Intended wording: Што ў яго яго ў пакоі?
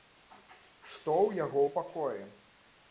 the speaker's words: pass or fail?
fail